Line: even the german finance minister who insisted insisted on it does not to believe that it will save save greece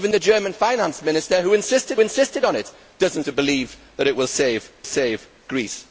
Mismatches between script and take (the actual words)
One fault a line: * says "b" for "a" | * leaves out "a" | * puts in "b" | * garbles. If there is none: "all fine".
all fine